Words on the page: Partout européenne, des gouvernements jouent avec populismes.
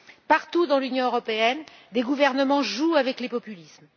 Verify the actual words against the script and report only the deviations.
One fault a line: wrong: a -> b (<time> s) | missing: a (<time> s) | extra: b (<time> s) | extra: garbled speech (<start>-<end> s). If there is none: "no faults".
extra: dans l'Union (0.7 s)
extra: les (3.2 s)